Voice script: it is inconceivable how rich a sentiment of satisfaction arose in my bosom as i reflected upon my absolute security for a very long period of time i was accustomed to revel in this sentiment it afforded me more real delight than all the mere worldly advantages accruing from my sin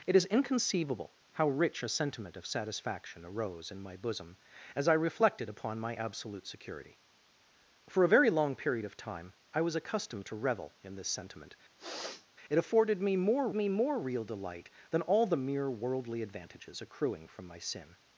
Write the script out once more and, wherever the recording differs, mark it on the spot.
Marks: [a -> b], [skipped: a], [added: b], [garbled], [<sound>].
it is inconceivable how rich a sentiment of satisfaction arose in my bosom as i reflected upon my absolute security for a very long period of time i was accustomed to revel in this sentiment [sniff] it afforded me more [added: me more] real delight than all the mere worldly advantages accruing from my sin